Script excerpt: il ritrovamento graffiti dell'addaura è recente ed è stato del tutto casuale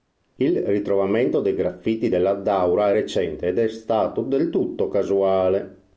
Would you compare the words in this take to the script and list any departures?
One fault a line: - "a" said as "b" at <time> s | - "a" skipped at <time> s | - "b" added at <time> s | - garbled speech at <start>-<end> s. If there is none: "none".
- "dei" added at 1.4 s